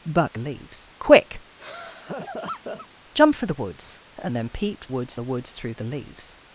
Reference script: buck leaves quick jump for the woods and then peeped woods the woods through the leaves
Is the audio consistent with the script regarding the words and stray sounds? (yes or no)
no